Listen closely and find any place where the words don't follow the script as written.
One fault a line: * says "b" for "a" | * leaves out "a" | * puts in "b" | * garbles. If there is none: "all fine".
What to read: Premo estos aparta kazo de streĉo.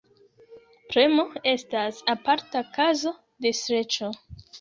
* says "estas" for "estos"